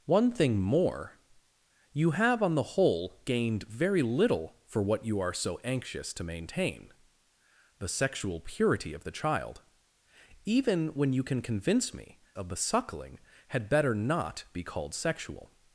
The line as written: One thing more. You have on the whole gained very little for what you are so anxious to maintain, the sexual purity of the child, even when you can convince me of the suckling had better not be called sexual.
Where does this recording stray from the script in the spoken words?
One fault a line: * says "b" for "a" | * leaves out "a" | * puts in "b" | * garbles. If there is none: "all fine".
all fine